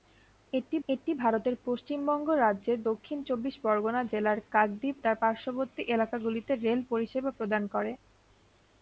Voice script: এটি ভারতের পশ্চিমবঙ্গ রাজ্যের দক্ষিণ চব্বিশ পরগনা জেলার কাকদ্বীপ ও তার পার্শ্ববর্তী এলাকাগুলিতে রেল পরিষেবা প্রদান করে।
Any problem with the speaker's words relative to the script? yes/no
yes